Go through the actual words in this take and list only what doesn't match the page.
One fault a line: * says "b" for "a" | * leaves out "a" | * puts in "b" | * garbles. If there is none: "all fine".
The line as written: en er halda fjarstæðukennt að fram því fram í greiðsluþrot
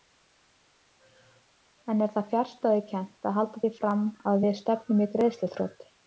* says "það" for "halda"
* says "halda" for "fram"
* puts in "að við stefnum"